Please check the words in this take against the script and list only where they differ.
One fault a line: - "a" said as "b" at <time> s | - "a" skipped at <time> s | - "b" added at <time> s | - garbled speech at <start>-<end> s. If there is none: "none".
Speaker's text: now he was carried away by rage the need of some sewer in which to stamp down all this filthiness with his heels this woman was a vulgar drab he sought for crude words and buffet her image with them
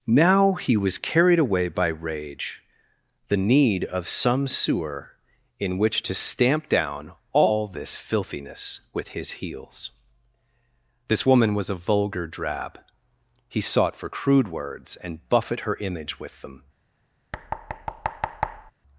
none